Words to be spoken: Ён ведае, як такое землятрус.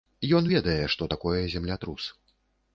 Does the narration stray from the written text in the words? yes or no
yes